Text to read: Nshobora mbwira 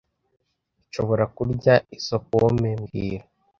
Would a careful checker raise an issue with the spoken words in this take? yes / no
yes